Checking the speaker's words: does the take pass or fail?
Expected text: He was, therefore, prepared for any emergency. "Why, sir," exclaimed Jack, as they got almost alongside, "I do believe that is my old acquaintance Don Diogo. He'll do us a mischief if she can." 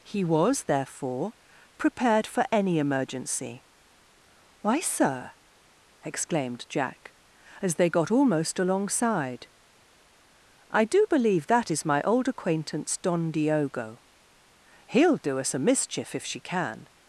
pass